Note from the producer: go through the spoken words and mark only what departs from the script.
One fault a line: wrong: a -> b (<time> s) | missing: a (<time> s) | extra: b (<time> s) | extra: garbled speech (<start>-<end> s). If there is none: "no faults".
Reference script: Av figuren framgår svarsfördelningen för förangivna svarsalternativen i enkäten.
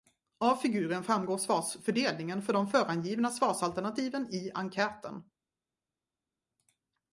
extra: de (2.5 s)